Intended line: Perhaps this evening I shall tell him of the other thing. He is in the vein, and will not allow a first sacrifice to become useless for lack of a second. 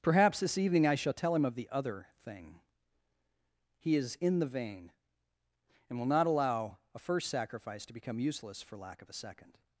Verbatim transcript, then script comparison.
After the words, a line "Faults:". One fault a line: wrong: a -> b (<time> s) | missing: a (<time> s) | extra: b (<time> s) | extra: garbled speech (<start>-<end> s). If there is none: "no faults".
Perhaps this evening I shall tell him of the other thing. He is in the vein, and will not allow a first sacrifice to become useless for lack of a second.
Faults:
no faults